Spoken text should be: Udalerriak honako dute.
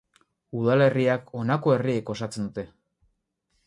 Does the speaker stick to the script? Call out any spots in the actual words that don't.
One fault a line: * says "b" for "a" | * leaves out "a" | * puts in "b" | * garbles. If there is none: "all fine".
* puts in "herriek osatzen"